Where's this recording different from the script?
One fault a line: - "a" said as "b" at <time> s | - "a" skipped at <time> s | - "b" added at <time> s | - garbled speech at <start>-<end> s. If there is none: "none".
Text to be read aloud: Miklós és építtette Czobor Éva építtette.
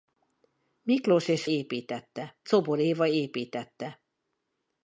none